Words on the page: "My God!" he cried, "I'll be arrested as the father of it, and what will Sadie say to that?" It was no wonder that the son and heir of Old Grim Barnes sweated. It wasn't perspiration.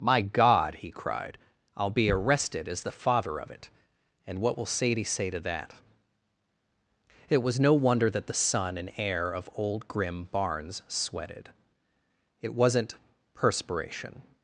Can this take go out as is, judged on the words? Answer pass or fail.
pass